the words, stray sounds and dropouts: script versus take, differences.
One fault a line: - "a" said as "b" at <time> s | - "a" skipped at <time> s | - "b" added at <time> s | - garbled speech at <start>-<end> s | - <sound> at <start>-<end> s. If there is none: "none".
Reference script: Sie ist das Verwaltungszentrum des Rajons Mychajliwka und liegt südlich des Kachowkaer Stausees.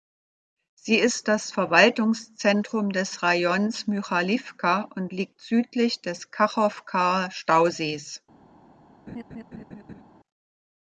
- laugh at 9.1-10.0 s